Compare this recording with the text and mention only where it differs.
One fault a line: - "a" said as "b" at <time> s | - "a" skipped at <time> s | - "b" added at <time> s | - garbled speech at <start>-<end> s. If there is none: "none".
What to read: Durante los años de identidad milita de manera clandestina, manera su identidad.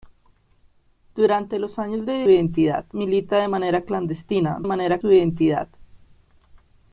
none